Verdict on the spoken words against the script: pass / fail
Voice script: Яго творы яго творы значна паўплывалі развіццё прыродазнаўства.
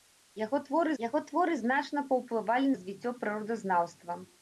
pass